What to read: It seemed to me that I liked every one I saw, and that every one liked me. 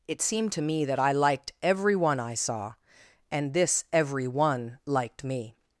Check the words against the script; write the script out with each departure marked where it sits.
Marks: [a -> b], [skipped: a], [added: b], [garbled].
It seemed to me that I liked every one I saw, and [that -> this] every one liked me.